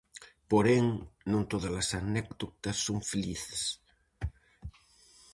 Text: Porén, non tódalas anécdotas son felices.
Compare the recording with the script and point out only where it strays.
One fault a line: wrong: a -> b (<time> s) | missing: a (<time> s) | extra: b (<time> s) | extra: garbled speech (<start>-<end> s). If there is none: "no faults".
no faults